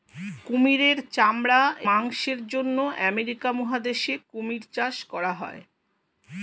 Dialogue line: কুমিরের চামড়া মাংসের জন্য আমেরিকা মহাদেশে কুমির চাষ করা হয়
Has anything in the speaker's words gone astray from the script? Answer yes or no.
no